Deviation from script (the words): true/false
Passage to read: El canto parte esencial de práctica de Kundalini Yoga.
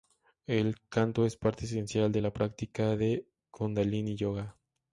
true